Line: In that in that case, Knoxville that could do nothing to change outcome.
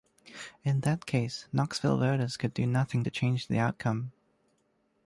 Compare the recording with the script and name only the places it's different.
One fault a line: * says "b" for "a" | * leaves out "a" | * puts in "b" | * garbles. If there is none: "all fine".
* leaves out "in that"
* says "voters" for "that"
* puts in "the"